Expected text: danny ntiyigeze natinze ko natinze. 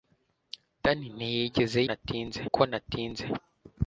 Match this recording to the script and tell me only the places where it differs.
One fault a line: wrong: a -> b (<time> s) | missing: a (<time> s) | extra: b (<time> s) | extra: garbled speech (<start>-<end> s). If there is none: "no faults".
no faults